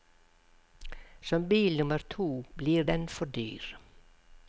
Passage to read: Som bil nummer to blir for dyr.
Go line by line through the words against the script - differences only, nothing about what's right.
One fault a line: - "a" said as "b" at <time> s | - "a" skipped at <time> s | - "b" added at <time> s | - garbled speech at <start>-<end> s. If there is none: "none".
- "den" added at 2.8 s